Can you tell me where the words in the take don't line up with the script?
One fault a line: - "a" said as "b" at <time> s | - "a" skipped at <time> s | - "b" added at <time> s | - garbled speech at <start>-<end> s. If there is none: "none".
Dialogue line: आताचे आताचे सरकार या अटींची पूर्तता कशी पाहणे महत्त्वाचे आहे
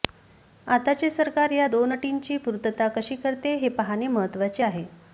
- "आताचे" skipped at 1.1 s
- "दोन" added at 1.6 s
- "करते हे" added at 3.2 s